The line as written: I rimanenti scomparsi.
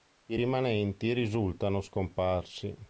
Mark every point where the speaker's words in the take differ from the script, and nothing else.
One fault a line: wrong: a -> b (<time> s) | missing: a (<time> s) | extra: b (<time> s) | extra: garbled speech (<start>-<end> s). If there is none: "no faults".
extra: risultano (1.1 s)